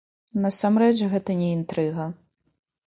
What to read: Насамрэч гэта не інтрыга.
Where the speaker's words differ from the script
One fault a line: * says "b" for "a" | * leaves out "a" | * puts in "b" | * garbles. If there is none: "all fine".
all fine